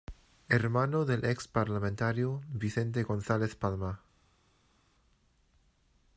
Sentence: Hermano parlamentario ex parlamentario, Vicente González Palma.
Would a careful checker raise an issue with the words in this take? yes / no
yes